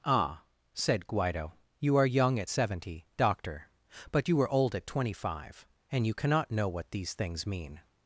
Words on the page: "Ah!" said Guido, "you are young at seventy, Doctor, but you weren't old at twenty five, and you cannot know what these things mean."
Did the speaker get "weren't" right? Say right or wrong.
wrong